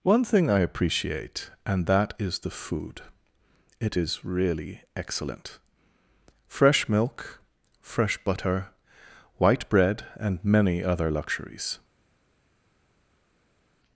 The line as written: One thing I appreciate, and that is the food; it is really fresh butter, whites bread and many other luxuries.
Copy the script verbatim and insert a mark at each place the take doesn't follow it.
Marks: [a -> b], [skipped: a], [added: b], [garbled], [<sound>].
One thing I appreciate, and that is the food; it is really [added: excellent] fresh [added: milk fresh] butter, [whites -> white] bread and many other luxuries.